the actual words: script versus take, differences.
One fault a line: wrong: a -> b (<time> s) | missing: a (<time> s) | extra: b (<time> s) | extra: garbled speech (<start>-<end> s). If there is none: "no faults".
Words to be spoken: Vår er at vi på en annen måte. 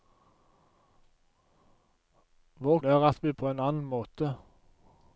no faults